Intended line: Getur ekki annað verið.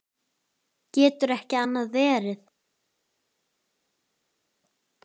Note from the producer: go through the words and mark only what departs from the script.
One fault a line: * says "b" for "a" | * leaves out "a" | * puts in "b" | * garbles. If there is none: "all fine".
all fine